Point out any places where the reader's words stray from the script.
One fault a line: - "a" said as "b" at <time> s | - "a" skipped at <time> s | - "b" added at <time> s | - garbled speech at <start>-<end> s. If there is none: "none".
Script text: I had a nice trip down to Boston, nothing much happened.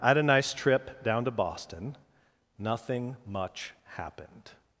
none